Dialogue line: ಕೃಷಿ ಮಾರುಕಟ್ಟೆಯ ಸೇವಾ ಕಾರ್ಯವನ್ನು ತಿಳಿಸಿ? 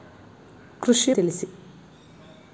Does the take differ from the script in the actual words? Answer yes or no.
yes